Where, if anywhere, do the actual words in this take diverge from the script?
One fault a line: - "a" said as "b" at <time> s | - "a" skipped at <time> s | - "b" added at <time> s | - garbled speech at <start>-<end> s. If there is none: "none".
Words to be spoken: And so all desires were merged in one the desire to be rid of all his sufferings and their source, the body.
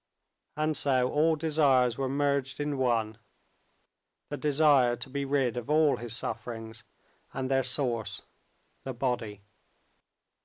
none